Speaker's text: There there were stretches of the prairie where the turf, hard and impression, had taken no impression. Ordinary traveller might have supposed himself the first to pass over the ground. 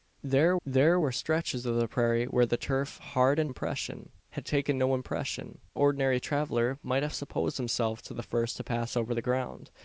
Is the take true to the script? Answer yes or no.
yes